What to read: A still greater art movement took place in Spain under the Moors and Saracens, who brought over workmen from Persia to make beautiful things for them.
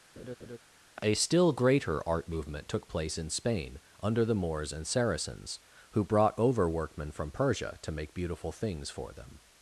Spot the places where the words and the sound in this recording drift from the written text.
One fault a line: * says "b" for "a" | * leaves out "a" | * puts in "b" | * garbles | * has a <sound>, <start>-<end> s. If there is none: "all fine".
* has a laugh, 0.2-0.6 s